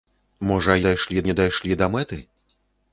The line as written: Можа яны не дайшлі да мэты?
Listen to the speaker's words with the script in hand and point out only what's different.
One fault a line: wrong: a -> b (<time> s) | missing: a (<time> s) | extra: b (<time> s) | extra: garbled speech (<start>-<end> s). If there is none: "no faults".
wrong: яны -> дайшлі (0.9 s)